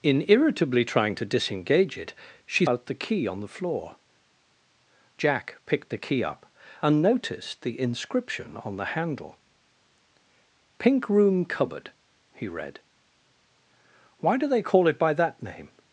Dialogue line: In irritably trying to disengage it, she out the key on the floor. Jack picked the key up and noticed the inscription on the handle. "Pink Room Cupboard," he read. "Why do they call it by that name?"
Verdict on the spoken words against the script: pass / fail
pass